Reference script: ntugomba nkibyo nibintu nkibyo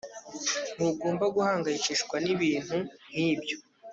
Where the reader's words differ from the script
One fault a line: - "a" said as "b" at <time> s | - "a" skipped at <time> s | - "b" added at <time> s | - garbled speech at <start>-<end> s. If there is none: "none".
- "nkibyo" said as "guhangayikishwa" at 1.3 s